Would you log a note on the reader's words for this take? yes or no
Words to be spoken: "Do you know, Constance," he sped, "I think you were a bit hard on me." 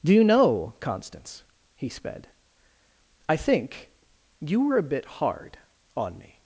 no